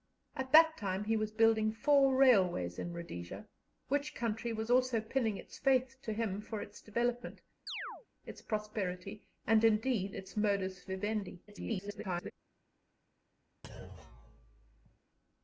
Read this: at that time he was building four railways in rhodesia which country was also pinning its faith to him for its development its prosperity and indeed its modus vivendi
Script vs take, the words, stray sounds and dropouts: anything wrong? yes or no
yes